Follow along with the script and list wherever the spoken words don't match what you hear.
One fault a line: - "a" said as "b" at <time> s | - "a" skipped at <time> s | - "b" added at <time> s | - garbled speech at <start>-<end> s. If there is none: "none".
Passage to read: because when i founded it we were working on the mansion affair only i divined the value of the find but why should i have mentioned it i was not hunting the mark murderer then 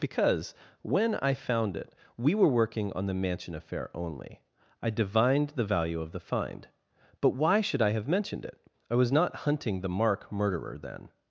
- "founded" said as "found" at 1.3 s